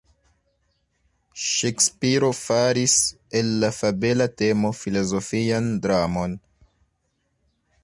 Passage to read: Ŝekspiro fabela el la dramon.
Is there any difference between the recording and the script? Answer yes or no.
yes